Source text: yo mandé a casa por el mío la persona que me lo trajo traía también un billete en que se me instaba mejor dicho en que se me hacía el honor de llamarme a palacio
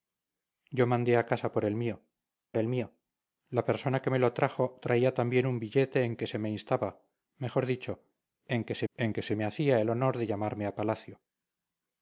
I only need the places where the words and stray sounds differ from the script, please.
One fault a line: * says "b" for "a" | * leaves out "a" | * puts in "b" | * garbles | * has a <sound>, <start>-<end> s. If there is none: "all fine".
* puts in "el mío"
* puts in "en que se"